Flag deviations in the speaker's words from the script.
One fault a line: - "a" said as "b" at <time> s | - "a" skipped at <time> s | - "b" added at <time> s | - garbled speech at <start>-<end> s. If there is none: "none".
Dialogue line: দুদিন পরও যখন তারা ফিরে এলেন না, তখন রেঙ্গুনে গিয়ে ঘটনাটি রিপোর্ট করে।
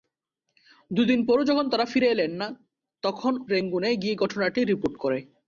none